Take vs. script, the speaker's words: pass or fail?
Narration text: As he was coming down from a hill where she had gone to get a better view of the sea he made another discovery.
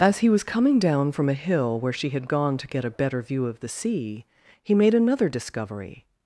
pass